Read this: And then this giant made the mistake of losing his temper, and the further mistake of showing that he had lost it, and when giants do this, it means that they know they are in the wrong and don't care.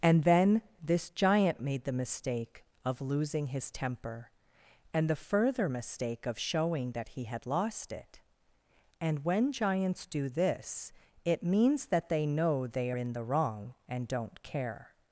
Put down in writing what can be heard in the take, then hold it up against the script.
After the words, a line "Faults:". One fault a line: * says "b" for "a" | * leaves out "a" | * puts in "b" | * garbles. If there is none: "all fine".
And then this giant made the mistake of losing his temper, and the further mistake of showing that he had lost it, and when giants do this, it means that they know they in the wrong and don't care.
Faults:
* leaves out "are"